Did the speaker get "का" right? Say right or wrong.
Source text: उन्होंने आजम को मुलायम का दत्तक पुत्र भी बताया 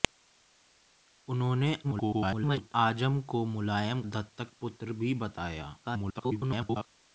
wrong